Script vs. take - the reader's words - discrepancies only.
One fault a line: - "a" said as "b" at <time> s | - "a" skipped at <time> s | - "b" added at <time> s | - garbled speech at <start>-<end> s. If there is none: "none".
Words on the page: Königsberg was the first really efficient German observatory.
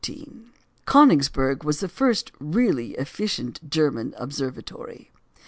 none